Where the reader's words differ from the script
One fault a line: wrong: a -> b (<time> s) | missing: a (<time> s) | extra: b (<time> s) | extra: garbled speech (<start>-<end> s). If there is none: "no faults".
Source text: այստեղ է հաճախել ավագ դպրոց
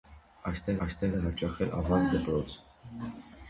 extra: այստեղ (0.9 s)